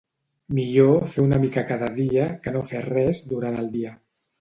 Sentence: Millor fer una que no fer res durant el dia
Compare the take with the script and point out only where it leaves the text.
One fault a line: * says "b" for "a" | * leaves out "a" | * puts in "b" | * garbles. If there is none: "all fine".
* puts in "mica cada dia"